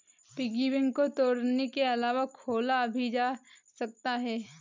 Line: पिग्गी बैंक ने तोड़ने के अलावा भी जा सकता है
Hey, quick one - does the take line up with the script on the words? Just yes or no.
no